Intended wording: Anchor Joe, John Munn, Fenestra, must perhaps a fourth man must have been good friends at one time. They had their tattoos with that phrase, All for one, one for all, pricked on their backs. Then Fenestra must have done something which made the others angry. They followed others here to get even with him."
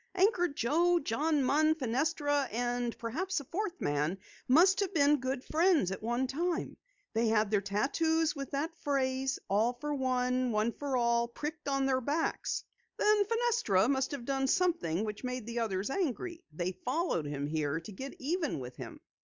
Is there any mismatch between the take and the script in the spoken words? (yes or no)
yes